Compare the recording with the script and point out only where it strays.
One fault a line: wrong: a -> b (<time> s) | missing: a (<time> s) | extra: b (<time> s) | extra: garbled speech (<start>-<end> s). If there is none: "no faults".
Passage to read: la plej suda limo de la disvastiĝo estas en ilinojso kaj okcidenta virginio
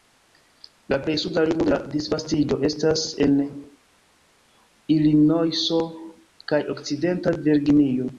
no faults